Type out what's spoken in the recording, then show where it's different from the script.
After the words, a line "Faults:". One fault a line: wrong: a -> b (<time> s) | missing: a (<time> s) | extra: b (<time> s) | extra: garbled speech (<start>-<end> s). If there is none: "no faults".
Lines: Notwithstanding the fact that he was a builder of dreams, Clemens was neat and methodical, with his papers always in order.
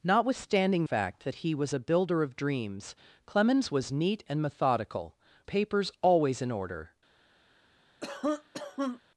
Notwithstanding fact that he was a builder of dreams, Clemens was neat and methodical, papers always in order.
Faults:
missing: the (0.8 s)
missing: with his (5.2 s)